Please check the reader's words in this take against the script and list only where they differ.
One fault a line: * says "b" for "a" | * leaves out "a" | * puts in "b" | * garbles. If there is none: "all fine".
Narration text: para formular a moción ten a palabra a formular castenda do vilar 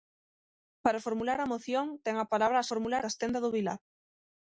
all fine